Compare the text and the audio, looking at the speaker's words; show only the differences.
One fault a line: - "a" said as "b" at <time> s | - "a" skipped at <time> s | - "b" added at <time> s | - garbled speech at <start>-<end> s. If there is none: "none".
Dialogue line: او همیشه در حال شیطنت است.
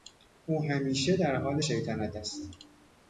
none